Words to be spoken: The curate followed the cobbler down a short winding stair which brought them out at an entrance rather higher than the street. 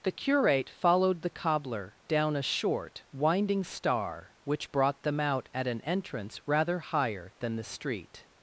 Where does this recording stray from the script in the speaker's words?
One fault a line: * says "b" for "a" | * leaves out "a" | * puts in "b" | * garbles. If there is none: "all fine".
* says "star" for "stair"